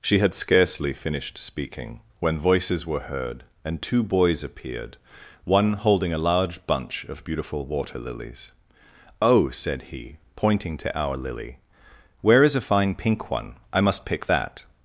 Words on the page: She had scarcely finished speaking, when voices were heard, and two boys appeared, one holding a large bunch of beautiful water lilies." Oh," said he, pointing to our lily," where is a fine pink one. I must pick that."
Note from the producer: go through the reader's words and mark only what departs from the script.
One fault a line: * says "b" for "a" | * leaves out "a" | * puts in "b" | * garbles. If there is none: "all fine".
all fine